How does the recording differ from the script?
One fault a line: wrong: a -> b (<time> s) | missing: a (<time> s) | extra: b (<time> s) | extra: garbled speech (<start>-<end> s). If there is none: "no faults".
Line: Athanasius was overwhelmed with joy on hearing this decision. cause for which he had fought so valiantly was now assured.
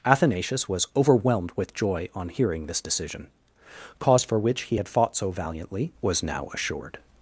no faults